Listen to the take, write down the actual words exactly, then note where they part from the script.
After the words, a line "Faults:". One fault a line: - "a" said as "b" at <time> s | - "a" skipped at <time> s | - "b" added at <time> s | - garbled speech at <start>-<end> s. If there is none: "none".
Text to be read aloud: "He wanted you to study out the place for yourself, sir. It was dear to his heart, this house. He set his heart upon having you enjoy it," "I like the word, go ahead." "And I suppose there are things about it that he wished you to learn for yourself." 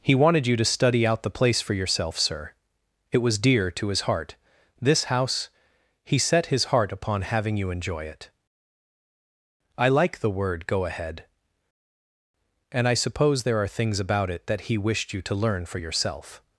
"He wanted you to study out the place for yourself, sir. It was dear to his heart, this house. He set his heart upon having you enjoy it," "I like the word, go ahead." "And I suppose there are things about it that he wished you to learn for yourself."
Faults:
none